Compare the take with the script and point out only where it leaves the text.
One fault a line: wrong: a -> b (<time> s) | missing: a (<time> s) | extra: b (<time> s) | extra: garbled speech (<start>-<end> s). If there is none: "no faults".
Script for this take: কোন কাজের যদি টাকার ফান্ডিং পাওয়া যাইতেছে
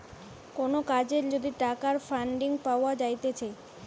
no faults